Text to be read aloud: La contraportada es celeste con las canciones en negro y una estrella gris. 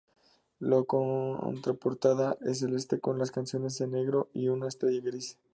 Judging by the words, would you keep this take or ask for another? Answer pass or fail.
pass